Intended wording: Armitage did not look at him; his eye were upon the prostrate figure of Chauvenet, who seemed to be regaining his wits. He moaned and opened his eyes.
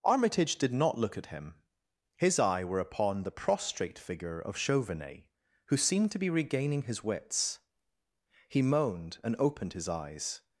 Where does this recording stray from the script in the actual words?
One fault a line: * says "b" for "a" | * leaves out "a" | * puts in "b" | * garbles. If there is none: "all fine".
all fine